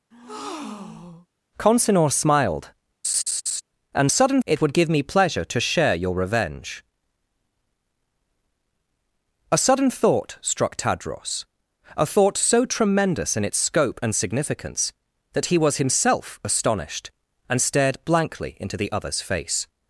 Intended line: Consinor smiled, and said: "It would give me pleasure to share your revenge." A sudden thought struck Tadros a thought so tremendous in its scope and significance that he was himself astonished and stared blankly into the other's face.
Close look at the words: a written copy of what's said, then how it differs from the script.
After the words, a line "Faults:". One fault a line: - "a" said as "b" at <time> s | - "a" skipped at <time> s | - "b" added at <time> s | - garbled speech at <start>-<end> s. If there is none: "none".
Consinor smiled, and sudden: "It would give me pleasure to share your revenge." A sudden thought struck Tadros a thought so tremendous in its scope and significance that he was himself astonished and stared blankly into the other's face.
Faults:
- "said" said as "sudden" at 4.1 s